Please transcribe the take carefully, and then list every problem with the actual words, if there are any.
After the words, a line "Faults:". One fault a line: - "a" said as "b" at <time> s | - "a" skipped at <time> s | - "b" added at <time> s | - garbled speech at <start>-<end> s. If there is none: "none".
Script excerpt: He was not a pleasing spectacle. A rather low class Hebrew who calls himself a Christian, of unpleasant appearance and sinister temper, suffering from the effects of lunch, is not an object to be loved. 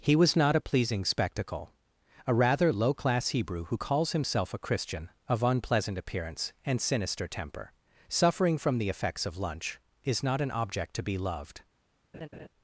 He was not a pleasing spectacle. A rather low class Hebrew who calls himself a Christian, of unpleasant appearance and sinister temper, suffering from the effects of lunch, is not an object to be loved.
Faults:
none